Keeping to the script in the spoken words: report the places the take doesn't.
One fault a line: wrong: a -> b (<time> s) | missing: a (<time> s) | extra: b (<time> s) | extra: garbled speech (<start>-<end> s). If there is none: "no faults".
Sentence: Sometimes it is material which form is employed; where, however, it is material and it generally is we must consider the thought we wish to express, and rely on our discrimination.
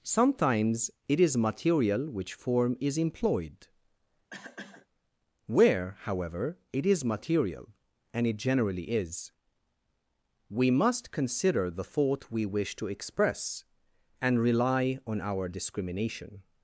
no faults